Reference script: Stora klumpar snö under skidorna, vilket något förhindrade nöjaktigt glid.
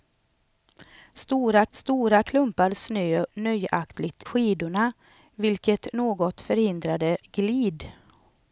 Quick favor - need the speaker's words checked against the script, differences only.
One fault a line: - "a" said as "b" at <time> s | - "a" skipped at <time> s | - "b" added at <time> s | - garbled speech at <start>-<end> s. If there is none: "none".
- "stora" added at 1.7 s
- "under" said as "nöjaktigt" at 3.3 s
- "nöjaktigt" skipped at 7.2 s